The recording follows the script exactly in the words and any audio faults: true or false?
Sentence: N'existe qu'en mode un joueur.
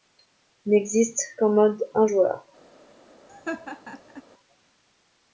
false